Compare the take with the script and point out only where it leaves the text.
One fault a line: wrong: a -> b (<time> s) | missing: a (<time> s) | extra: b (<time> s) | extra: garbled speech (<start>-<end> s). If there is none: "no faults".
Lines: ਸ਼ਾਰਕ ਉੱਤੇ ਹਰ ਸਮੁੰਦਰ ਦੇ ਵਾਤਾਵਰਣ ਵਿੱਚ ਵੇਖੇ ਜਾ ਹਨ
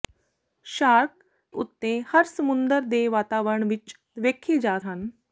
no faults